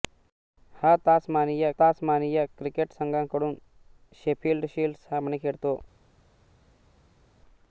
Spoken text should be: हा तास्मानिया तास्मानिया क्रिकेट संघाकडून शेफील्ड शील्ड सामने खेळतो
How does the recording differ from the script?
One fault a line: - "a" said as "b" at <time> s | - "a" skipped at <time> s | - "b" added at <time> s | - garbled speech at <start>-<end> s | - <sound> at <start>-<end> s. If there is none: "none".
none